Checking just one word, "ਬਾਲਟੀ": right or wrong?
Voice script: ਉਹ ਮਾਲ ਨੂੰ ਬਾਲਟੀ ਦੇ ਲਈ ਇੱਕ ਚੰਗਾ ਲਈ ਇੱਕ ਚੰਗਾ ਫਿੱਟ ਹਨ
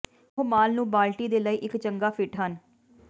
right